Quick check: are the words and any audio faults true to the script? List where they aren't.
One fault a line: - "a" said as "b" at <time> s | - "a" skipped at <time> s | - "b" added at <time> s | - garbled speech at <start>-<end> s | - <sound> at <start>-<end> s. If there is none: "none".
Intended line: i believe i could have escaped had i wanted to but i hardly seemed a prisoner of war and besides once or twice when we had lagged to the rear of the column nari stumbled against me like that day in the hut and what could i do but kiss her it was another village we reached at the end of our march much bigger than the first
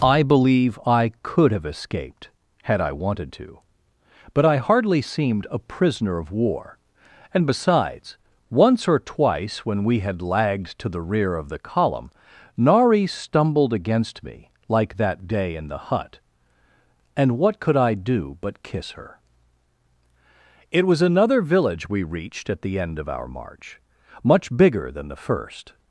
none